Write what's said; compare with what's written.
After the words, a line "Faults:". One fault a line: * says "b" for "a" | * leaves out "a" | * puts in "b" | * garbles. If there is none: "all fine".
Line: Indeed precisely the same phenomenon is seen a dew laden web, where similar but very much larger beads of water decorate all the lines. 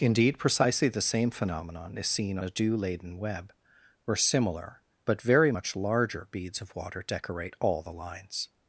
Indeed precisely the same phenomenon is seen a dew laden web, where similar but very much larger beads of water decorate all the lines.
Faults:
all fine